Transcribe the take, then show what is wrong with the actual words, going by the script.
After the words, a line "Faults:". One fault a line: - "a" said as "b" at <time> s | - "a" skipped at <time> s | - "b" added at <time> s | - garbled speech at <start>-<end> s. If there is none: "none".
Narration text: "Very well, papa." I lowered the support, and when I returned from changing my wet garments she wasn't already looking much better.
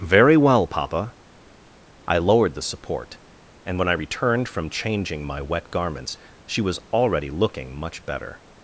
"Very well, papa." I lowered the support, and when I returned from changing my wet garments she was already looking much better.
Faults:
- "wasn't" said as "was" at 6.6 s